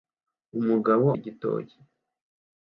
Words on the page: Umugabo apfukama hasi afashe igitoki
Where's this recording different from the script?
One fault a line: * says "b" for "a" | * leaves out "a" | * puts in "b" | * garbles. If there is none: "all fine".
* leaves out "apfukama hasi afashe"